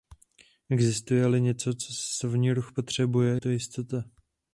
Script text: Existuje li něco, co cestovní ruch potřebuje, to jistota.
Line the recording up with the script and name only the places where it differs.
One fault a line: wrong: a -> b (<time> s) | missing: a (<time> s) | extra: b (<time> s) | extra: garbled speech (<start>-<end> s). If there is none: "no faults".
no faults